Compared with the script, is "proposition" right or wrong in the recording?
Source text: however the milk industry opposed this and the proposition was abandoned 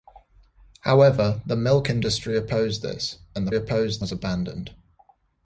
wrong